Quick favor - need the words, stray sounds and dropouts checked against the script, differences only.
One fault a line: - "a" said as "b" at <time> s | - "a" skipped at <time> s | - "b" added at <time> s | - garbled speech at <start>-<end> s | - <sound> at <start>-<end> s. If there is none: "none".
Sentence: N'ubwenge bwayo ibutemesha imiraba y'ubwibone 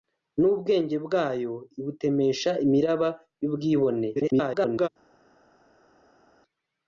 - garbled speech at 4.1-4.9 s